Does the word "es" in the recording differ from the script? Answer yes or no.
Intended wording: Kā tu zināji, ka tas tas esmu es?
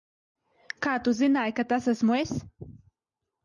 no